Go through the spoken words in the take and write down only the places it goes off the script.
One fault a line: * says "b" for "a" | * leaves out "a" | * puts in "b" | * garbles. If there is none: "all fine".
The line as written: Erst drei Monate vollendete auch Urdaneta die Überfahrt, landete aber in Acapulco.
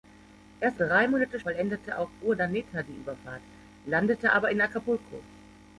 all fine